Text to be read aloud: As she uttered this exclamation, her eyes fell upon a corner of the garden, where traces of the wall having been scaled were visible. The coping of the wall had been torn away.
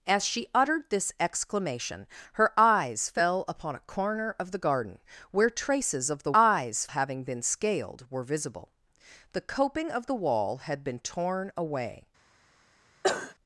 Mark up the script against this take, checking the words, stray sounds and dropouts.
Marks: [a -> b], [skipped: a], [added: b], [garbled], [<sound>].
As she uttered this exclamation, her eyes fell upon a corner of the garden, where traces of the [wall -> eyes] having been scaled were visible. The coping of the wall had been torn away. [cough]